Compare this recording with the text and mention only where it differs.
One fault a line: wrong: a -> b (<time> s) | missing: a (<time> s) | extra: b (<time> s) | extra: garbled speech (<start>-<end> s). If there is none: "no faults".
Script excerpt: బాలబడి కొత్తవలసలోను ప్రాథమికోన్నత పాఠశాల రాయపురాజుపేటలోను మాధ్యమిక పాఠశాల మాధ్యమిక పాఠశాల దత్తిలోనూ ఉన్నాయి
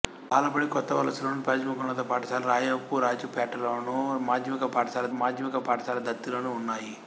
no faults